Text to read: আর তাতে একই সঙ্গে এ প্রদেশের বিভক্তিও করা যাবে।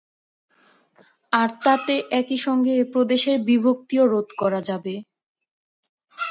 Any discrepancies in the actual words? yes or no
yes